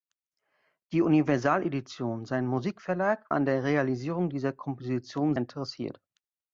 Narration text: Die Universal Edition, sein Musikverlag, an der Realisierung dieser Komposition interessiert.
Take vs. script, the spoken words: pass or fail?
pass